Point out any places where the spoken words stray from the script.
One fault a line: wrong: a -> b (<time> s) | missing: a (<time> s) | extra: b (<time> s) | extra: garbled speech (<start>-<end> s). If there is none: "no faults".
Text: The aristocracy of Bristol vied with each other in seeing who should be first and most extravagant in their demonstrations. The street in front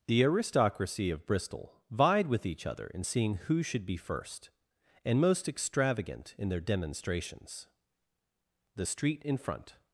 no faults